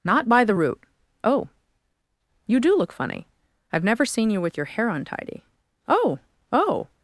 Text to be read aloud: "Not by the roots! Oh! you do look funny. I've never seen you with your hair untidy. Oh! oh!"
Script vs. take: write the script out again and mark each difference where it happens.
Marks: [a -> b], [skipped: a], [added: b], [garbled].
"Not by the [roots! -> root] Oh! you do look funny. I've never seen you with your hair untidy. Oh! oh!"